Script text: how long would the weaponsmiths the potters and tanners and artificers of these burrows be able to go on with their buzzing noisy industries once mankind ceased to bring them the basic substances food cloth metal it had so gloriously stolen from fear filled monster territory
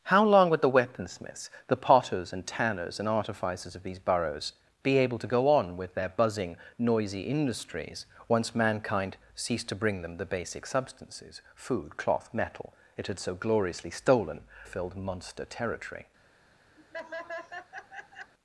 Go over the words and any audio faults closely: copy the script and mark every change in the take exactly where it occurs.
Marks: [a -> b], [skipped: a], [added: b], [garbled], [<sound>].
how long would the weaponsmiths the potters and tanners and artificers of these burrows be able to go on with their buzzing noisy industries once mankind ceased to bring them the basic substances food cloth metal it had so gloriously stolen [skipped: from fear] filled monster territory [laugh]